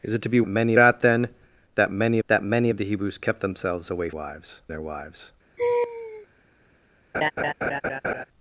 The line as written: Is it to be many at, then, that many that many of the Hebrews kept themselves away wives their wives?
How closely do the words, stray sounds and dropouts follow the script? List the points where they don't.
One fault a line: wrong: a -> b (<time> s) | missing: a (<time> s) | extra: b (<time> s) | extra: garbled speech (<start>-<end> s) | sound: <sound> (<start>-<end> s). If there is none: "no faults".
sound: laugh (5.6-6.3 s)
sound: laugh (7.1-8.3 s)